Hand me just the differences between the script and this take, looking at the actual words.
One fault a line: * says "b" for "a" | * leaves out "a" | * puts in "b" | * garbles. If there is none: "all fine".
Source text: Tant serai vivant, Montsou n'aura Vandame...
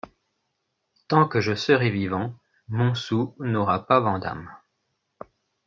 * puts in "que je"
* puts in "pas"